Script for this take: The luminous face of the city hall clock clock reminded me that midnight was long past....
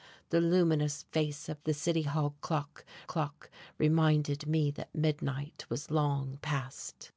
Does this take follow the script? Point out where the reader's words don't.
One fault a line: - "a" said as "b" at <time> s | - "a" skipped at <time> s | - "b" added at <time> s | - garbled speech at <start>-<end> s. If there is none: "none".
none